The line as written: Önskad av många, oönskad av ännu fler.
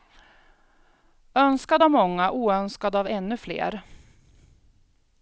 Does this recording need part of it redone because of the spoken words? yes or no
no